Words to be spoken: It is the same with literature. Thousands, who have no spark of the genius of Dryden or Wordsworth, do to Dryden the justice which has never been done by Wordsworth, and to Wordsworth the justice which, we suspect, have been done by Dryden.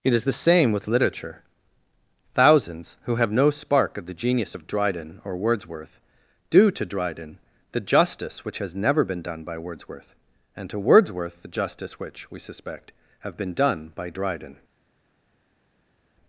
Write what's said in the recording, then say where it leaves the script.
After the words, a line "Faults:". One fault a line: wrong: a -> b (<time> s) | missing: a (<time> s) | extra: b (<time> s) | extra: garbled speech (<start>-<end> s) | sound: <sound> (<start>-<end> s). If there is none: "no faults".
It is the same with literature. Thousands, who have no spark of the genius of Dryden or Wordsworth, do to Dryden the justice which has never been done by Wordsworth, and to Wordsworth the justice which, we suspect, have been done by Dryden.
Faults:
no faults